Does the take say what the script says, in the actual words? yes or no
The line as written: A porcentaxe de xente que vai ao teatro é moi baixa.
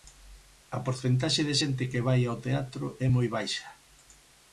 yes